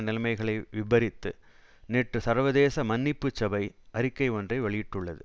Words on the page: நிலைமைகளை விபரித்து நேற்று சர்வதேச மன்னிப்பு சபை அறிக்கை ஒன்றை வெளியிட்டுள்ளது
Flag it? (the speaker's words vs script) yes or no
no